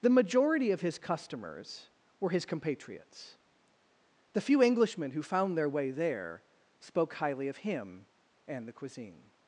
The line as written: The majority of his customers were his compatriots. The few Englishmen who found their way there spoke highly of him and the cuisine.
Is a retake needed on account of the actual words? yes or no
no